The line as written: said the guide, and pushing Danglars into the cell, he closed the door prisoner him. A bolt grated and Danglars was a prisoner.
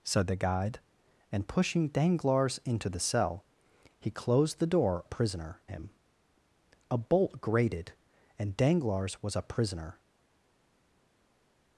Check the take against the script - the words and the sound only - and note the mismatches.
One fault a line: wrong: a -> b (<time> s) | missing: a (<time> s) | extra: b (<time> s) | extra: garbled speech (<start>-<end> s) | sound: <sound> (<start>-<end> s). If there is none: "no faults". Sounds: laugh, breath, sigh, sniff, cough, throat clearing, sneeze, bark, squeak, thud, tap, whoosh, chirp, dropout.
no faults